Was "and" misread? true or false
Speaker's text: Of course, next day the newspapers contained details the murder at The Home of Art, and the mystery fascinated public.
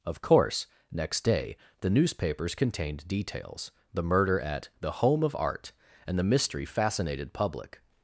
false